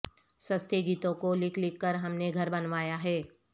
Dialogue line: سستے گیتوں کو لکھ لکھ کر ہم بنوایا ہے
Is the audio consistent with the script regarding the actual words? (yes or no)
no